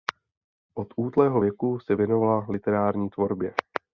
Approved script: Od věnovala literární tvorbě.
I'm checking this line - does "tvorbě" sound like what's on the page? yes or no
yes